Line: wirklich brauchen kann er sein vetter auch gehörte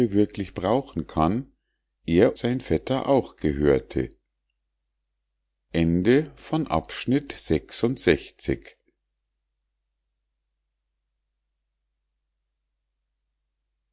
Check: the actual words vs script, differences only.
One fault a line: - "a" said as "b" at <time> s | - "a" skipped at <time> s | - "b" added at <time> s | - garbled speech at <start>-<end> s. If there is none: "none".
none